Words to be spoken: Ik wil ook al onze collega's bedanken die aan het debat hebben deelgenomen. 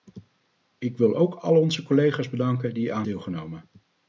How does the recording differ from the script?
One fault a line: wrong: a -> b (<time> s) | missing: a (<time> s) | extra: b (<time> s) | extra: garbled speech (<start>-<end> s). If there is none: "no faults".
missing: het debat hebben (3.1 s)